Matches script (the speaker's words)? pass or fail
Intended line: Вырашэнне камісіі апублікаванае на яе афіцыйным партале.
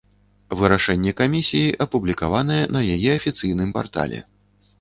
pass